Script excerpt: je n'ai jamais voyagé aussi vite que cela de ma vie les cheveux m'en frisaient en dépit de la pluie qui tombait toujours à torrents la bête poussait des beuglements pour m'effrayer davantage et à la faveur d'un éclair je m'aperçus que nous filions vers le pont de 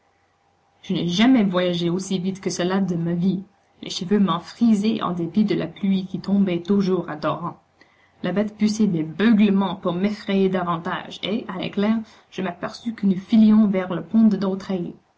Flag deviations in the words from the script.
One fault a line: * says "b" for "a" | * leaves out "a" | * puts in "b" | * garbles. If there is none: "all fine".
* leaves out "la faveur d'un"